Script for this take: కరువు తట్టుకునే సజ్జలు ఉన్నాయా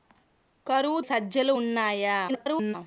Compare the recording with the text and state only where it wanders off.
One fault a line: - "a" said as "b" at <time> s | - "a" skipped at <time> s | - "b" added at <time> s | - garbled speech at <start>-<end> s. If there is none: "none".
- "తట్టుకునే" skipped at 1.0 s
- garbled speech at 2.3-2.8 s